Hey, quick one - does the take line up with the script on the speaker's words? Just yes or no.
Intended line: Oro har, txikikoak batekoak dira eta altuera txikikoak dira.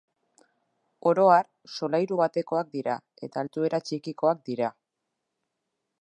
no